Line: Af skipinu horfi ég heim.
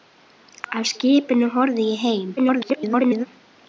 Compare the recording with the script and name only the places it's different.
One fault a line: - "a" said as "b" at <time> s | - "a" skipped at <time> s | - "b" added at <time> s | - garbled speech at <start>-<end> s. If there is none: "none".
- garbled speech at 2.4-3.3 s